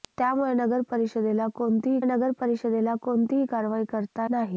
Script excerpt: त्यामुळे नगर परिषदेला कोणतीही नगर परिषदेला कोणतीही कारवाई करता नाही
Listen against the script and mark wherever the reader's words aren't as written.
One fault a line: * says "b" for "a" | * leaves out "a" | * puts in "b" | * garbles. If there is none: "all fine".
all fine